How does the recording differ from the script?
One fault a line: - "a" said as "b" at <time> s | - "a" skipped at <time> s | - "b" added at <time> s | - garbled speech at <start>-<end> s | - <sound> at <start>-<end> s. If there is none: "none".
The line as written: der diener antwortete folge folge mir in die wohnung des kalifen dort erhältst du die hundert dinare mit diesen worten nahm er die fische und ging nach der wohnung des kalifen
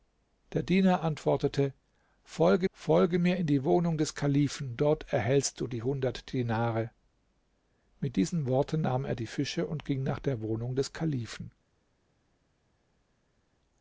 none